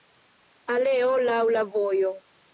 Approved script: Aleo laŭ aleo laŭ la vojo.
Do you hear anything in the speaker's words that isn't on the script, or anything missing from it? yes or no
yes